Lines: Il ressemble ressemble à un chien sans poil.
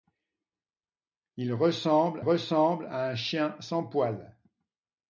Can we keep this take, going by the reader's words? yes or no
yes